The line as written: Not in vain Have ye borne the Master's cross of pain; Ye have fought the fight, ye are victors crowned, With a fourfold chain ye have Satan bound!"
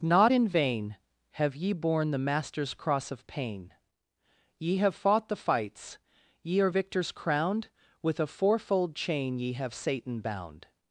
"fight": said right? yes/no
no